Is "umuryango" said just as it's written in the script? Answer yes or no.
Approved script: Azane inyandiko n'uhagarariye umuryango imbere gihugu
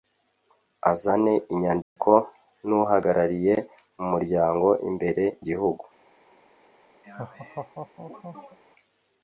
yes